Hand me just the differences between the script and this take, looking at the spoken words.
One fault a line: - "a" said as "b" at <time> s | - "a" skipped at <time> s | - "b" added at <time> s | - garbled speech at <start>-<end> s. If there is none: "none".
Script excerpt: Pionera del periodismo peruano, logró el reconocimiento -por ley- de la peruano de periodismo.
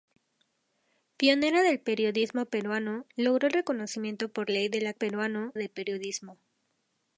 none